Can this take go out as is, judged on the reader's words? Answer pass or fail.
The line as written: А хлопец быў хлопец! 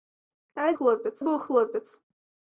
pass